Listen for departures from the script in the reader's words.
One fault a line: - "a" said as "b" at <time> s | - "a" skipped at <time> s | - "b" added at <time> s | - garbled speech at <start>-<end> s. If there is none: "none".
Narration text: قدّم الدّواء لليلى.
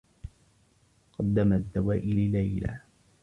none